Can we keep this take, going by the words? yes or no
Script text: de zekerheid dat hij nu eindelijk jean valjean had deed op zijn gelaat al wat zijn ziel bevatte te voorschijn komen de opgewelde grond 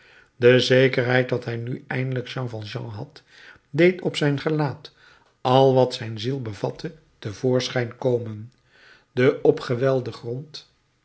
yes